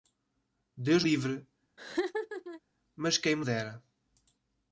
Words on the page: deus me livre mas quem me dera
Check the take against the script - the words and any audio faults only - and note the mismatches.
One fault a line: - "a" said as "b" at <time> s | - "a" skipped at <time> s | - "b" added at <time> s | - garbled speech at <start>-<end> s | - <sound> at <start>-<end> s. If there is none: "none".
- "me" skipped at 1.0 s
- laugh at 1.8-2.6 s